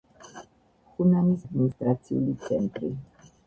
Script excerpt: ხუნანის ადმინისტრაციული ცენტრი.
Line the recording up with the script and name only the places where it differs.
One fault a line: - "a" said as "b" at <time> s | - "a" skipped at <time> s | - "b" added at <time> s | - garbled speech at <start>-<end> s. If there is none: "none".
none